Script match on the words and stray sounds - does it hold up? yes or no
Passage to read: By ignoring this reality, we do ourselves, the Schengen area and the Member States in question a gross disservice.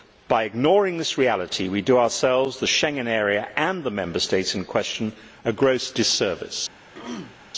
no